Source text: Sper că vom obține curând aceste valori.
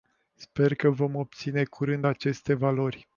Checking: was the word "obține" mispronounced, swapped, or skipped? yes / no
no